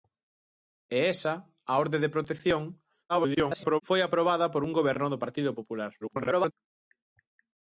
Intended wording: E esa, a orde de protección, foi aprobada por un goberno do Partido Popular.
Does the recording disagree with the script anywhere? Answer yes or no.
yes